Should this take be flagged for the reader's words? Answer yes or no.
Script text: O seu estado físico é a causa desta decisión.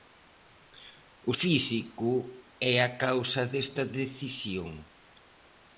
yes